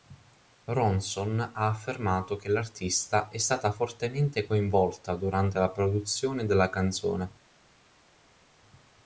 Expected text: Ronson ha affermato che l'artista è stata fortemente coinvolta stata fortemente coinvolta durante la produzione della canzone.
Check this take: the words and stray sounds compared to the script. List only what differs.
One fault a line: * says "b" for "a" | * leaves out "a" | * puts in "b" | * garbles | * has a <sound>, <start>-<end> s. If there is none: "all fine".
* leaves out "stata fortemente coinvolta"